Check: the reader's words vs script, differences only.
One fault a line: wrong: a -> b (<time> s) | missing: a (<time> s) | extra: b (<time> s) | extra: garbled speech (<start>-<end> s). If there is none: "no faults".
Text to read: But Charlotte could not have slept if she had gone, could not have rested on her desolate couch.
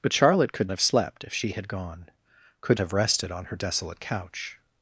missing: not (0.7 s)
missing: not (2.8 s)